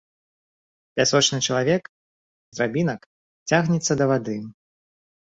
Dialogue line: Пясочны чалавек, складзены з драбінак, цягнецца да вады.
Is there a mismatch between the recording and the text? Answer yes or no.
yes